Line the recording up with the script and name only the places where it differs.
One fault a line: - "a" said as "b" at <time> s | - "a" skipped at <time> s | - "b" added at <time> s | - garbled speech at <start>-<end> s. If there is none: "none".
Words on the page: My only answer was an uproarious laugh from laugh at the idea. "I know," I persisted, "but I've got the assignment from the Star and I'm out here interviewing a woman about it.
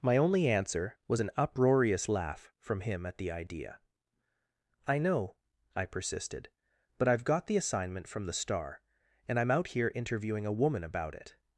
- "laugh" said as "him" at 2.8 s